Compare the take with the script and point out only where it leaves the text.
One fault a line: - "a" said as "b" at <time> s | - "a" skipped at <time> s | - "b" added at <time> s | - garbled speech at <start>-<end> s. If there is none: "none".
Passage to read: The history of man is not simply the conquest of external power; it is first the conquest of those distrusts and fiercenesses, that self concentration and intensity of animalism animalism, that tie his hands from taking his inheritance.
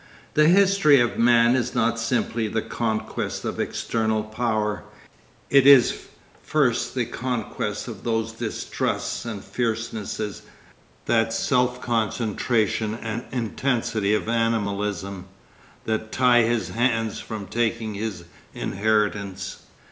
- "animalism" skipped at 15.2 s